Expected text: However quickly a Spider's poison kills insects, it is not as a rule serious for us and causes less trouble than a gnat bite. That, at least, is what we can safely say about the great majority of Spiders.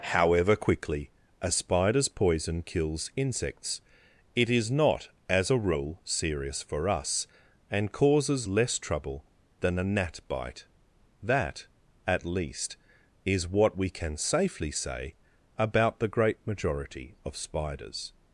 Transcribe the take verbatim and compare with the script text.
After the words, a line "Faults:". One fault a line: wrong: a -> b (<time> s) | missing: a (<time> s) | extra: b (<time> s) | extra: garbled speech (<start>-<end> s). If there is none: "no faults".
However quickly a Spider's poison kills insects, it is not as a rule serious for us and causes less trouble than a gnat bite. That, at least, is what we can safely say about the great majority of Spiders.
Faults:
no faults